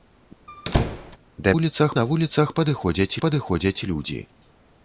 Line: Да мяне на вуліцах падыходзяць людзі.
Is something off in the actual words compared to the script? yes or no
yes